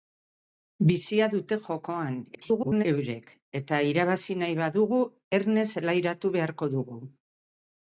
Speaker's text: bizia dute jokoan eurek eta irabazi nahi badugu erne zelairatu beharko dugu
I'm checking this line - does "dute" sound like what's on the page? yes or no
yes